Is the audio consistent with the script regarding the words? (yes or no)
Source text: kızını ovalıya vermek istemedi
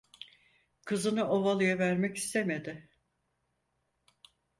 yes